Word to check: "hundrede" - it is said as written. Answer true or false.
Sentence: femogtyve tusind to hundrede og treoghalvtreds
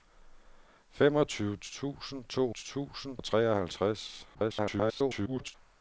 false